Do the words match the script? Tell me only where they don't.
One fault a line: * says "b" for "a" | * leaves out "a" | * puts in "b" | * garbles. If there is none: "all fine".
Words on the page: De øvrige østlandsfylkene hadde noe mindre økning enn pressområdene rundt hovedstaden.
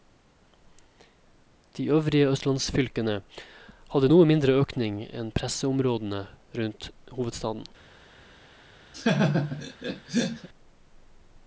all fine